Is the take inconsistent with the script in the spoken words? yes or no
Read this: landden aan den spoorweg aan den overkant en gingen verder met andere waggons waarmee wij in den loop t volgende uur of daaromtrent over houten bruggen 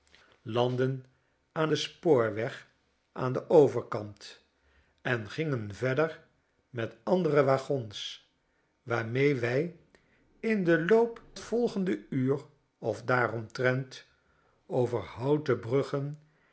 no